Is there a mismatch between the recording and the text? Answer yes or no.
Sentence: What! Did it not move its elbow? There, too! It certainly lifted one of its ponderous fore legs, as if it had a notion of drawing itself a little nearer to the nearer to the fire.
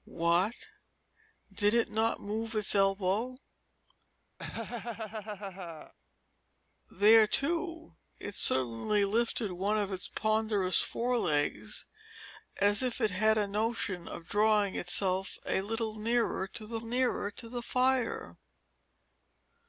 no